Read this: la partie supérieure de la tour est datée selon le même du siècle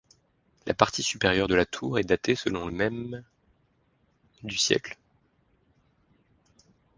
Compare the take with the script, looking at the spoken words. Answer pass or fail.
pass